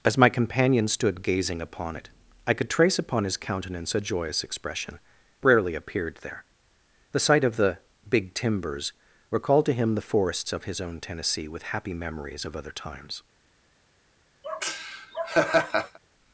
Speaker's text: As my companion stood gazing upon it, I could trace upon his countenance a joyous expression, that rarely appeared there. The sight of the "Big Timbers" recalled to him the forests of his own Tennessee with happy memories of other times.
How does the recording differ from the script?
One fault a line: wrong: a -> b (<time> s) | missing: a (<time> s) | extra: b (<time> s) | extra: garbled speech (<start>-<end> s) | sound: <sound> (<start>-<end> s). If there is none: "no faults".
missing: that (5.0 s)
sound: laugh (14.4-16.0 s)